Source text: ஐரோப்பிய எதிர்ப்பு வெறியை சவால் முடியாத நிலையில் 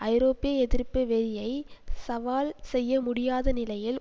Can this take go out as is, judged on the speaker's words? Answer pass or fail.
fail